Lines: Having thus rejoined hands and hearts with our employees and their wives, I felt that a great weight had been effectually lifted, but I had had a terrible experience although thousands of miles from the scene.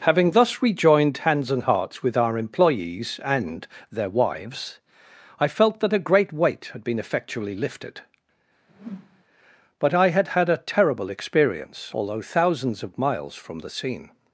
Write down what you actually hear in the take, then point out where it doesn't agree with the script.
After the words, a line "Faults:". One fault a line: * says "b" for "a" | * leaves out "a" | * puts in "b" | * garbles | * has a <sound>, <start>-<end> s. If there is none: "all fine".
Having thus rejoined hands and hearts with our employees and their wives, I felt that a great weight had been effectually lifted, but I had had a terrible experience although thousands of miles from the scene.
Faults:
* has a whoosh, 8.7-9.2 s